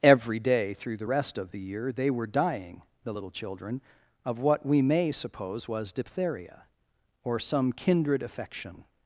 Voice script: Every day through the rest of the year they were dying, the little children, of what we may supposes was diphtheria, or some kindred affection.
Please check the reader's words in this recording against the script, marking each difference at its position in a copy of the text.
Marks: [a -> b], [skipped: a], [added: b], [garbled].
Every day through the rest of the year they were dying, the little children, of what we may [supposes -> suppose] was diphtheria, or some kindred affection.